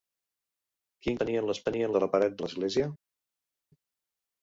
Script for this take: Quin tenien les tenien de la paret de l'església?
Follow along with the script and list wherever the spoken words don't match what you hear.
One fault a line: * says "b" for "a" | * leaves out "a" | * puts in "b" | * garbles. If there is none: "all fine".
all fine